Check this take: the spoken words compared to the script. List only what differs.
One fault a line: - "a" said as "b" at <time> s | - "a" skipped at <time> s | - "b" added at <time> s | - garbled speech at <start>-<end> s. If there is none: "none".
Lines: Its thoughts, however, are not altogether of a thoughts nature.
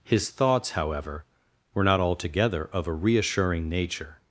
- "Its" said as "His" at 0.0 s
- "are" said as "were" at 1.7 s
- "thoughts" said as "reassuring" at 2.9 s